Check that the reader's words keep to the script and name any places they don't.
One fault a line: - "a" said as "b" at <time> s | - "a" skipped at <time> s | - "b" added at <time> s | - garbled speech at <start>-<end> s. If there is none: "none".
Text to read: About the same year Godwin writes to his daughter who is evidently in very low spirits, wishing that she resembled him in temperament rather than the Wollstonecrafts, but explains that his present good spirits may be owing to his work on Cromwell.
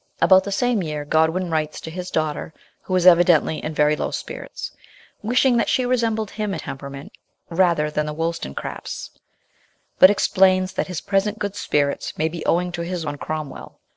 - "in" skipped at 6.5 s
- "work" skipped at 13.0 s